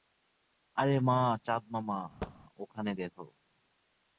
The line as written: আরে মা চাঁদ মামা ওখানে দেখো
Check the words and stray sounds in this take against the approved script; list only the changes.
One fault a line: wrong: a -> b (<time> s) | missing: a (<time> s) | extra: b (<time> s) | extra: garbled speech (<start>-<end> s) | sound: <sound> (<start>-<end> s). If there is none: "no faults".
sound: thud (2.2-2.4 s)